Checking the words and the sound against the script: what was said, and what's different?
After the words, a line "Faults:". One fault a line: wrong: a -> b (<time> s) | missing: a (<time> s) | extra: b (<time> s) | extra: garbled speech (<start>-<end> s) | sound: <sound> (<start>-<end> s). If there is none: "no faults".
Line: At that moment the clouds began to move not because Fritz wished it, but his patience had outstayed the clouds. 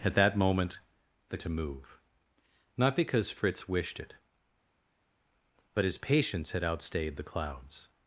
At that moment the to move not because Fritz wished it, but his patience had outstayed the clouds.
Faults:
missing: clouds began (1.4 s)